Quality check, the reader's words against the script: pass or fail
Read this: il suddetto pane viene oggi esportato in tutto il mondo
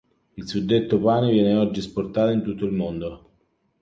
pass